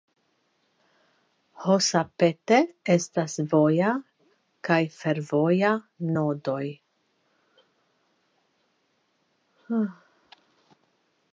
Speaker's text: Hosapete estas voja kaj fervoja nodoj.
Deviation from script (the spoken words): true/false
false